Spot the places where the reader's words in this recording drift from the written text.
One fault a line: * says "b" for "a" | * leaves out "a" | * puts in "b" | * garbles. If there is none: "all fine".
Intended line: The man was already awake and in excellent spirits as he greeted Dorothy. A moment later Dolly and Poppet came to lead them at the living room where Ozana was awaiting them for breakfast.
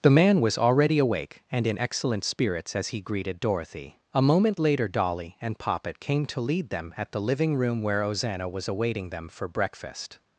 all fine